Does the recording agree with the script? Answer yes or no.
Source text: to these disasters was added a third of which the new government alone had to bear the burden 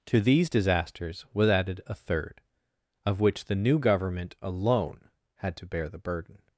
yes